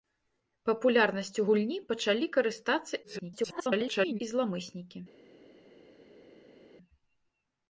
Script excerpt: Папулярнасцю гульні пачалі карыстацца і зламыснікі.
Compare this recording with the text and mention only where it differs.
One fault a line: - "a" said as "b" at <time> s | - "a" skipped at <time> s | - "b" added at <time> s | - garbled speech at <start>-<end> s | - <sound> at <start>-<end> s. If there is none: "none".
- garbled speech at 3.0-4.2 s